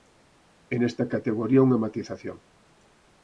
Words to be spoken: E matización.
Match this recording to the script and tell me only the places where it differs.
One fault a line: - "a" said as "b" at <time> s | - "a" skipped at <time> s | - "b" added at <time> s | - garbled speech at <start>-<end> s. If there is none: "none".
- "nesta categoría unha" added at 0.8 s